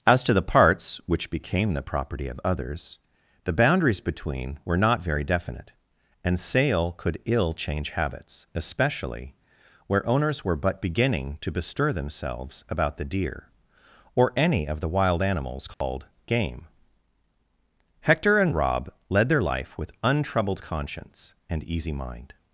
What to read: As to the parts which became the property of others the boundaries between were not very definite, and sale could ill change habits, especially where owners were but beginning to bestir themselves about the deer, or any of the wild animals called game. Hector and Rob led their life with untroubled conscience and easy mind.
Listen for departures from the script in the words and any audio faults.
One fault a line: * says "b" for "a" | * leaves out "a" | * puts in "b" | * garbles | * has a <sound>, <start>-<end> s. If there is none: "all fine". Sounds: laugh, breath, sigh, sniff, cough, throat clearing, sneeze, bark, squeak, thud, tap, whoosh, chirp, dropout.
* has a dropout, 15.7-15.8 s